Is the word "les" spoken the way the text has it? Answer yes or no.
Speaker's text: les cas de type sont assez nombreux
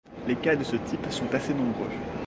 yes